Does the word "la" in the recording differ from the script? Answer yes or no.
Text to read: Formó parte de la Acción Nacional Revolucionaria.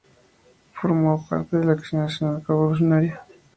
no